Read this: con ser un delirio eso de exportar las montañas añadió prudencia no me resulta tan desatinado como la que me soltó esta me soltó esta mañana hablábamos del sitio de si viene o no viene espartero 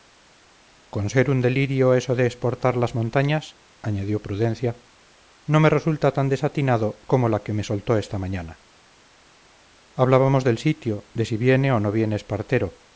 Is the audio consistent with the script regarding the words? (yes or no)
no